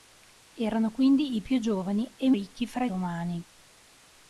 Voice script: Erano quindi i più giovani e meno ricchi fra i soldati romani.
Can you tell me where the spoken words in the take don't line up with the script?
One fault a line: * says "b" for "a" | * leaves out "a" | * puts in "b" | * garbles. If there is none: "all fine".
* leaves out "meno"
* leaves out "soldati"